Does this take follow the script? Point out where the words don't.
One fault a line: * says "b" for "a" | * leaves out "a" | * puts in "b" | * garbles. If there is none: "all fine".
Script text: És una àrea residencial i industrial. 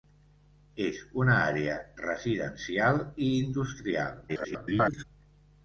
* garbles